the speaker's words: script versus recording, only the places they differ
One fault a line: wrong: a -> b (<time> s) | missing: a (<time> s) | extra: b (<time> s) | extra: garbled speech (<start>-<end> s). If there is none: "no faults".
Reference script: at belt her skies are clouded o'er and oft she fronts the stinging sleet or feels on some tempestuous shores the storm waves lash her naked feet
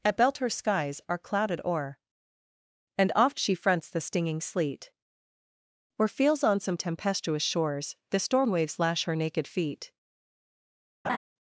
no faults